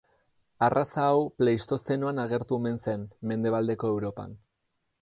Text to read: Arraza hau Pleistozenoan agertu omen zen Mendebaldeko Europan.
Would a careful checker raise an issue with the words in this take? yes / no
no